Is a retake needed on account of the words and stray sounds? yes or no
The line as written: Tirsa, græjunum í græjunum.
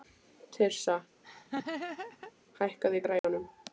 yes